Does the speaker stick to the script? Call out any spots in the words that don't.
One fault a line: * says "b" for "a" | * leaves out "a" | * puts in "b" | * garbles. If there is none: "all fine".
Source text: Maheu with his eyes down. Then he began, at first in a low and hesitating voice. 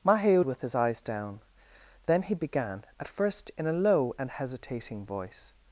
all fine